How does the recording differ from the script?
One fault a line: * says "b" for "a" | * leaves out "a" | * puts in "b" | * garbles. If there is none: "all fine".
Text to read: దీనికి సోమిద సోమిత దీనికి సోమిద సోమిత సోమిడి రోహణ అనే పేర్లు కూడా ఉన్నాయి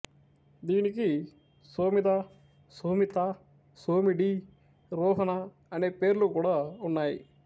* leaves out "దీనికి సోమిద సోమిత"